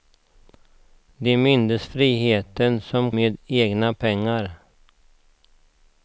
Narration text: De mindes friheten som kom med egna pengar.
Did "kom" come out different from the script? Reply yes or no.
yes